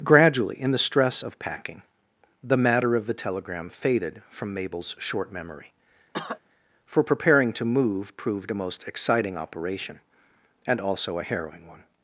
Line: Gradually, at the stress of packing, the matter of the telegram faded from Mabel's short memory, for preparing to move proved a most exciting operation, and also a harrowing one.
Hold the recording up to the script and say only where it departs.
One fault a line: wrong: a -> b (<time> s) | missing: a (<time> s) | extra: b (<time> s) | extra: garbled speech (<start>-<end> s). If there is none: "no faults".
wrong: at -> in (0.6 s)